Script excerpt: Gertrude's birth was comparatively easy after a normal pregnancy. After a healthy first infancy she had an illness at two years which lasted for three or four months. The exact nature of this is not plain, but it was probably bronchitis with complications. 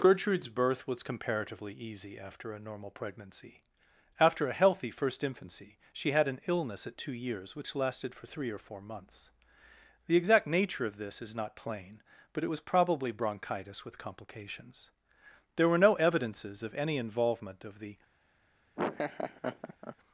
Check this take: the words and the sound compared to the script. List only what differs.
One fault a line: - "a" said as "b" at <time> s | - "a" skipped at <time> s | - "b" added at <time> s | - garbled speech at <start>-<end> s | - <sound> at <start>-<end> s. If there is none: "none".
- "There were no evidences of any involvement of the" added at 15.5 s
- laugh at 18.8-20.0 s